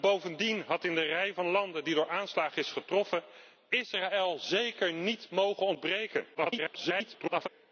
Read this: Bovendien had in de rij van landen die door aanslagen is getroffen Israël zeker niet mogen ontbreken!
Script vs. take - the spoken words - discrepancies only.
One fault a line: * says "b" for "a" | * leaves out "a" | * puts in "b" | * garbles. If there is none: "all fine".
* garbles